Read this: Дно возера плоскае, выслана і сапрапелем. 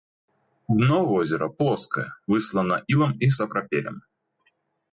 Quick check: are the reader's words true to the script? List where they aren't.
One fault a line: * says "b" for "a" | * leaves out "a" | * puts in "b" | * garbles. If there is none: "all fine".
* puts in "ілам"